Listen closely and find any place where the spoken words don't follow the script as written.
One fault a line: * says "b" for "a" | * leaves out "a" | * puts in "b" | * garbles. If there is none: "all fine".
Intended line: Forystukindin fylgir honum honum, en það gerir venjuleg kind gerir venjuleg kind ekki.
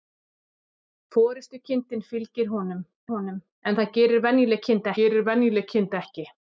all fine